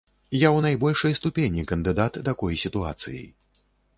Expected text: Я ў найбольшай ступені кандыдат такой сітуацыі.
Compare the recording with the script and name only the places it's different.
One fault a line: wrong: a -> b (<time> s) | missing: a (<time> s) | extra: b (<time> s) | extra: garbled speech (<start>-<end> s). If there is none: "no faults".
no faults